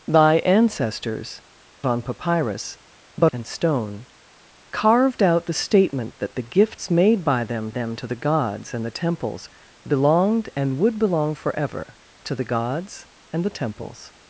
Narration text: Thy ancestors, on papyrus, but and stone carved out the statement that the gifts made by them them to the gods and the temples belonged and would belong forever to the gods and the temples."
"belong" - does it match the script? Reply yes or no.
yes